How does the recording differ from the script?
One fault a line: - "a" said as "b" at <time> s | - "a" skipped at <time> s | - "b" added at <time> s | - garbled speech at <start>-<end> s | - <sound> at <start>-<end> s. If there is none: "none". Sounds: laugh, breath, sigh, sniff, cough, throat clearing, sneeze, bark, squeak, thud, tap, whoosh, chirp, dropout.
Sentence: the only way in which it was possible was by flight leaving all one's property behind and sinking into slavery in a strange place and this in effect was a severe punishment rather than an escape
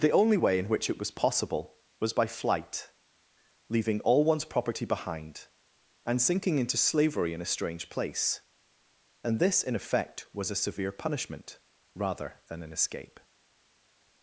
none